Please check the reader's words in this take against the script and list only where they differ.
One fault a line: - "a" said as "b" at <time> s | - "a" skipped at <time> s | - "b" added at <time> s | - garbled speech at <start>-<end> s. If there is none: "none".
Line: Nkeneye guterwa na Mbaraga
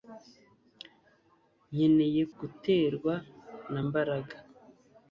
none